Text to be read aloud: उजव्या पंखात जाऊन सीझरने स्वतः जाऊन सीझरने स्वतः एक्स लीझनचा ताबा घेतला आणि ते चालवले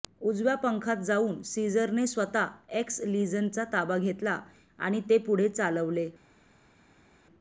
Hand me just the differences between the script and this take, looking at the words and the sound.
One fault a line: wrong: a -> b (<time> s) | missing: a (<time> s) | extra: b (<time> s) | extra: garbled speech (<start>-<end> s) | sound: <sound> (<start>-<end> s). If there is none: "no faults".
missing: जाऊन सीझरने स्वतः (2.5 s)
extra: पुढे (5.2 s)